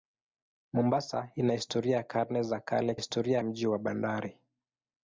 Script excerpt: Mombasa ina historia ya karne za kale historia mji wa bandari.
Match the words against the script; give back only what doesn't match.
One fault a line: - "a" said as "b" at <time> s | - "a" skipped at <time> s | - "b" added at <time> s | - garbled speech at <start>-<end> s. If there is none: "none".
none